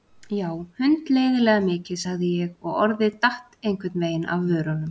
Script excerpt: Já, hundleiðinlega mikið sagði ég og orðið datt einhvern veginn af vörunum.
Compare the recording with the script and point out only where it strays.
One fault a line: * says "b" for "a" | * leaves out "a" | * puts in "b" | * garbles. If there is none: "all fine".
all fine